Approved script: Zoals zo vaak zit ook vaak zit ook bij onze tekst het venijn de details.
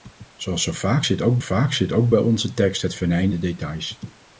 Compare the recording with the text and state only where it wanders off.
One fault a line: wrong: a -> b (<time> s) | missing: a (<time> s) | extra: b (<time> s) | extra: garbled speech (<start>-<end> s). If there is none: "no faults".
no faults